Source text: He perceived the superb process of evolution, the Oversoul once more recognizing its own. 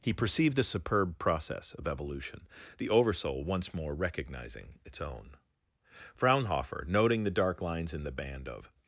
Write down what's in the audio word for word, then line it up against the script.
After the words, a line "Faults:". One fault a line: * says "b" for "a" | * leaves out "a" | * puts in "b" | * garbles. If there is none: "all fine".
He perceived the superb process of evolution, the Oversoul once more recognizing its own. Fraunhofer, noting the dark lines in the band of
Faults:
* puts in "Fraunhofer noting the dark lines in the band of"